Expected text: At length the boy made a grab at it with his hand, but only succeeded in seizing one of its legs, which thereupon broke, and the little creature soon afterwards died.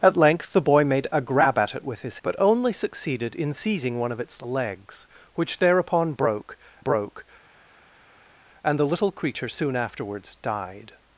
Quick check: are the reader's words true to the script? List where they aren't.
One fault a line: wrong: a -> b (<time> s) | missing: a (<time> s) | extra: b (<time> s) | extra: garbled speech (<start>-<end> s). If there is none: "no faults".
missing: hand (2.2 s)
extra: broke (6.8 s)